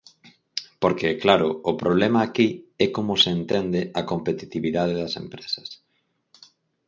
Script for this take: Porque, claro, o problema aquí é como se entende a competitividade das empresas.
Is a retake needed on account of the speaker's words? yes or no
no